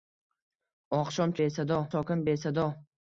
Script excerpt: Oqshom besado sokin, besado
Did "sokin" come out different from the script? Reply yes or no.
no